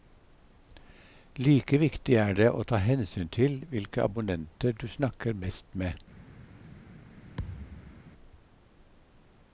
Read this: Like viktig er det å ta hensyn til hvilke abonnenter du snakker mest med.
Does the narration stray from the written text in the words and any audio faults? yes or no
yes